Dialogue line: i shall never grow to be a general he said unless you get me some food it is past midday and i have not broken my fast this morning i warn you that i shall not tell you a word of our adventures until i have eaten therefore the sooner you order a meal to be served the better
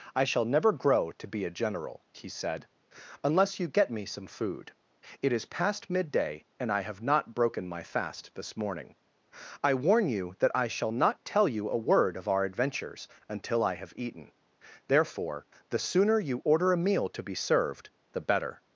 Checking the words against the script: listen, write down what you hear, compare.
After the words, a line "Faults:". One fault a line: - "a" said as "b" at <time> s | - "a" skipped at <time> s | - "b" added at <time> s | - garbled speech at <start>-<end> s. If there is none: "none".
i shall never grow to be a general he said unless you get me some food it is past midday and i have not broken my fast this morning i warn you that i shall not tell you a word of our adventures until i have eaten therefore the sooner you order a meal to be served the better
Faults:
none